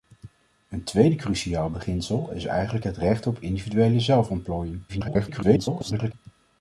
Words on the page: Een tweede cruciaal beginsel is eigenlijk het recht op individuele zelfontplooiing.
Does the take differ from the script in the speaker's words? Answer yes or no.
yes